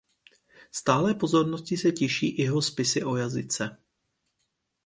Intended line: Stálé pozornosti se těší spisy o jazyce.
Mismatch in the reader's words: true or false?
true